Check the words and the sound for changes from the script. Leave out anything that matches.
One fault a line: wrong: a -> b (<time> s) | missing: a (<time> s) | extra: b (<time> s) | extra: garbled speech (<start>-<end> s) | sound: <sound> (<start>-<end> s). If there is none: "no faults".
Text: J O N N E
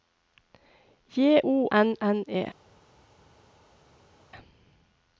no faults